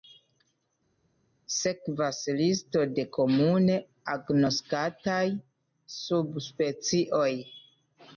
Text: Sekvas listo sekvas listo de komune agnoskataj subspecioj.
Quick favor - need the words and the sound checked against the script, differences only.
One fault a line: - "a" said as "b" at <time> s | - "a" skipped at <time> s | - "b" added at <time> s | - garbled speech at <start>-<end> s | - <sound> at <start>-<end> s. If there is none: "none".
- "sekvas listo" skipped at 2.8 s